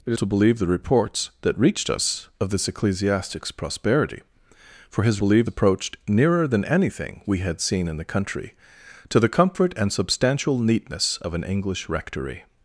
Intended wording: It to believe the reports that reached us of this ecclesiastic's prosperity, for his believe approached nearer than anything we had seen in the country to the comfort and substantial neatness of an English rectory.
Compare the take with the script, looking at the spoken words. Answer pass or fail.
pass